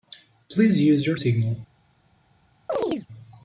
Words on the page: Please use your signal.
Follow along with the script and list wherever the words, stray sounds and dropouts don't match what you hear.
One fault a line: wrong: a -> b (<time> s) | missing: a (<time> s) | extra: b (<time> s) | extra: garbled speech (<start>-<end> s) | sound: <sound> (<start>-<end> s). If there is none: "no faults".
sound: chirp (2.7-3.1 s)